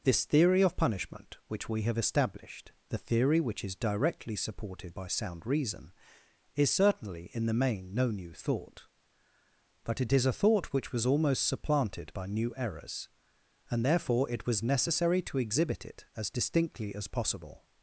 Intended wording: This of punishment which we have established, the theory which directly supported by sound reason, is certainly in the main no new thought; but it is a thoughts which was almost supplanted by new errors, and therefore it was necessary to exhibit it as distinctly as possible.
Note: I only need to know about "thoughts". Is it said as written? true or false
false